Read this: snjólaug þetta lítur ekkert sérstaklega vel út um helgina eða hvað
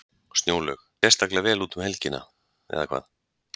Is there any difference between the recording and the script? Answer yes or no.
yes